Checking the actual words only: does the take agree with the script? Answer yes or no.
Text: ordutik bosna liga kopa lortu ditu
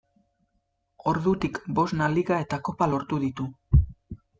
no